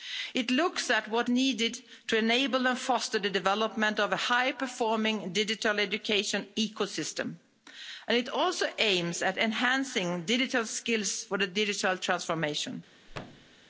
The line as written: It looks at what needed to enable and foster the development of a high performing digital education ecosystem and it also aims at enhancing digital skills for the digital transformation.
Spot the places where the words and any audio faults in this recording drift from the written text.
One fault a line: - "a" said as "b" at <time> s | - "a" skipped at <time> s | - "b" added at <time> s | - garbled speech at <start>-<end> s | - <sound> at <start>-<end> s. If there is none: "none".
- thud at 13.1-13.6 s